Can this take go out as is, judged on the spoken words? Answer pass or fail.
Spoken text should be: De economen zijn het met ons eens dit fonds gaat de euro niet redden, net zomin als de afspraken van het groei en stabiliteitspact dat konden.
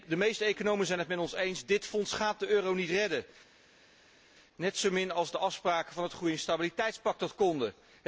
fail